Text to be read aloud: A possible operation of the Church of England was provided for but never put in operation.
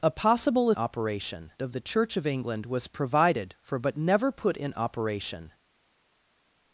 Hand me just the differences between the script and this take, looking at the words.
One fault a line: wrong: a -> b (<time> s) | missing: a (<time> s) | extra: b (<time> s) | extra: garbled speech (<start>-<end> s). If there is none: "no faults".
no faults